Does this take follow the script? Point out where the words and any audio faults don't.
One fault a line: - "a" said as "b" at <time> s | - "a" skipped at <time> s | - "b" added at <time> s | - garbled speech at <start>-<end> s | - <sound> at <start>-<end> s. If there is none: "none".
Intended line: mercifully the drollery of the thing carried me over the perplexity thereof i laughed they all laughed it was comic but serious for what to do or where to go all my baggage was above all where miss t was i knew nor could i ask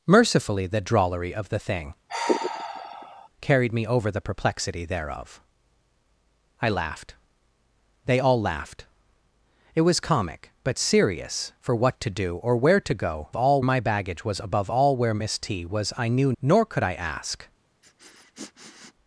- sigh at 2.1-3.3 s
- sniff at 17.8-18.9 s